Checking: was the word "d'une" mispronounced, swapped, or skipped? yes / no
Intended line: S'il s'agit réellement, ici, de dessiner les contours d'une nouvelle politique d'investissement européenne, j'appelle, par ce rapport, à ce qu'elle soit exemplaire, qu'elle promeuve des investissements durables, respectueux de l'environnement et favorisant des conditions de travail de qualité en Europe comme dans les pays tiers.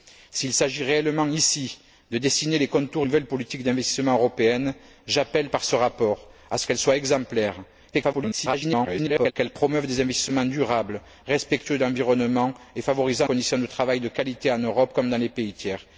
yes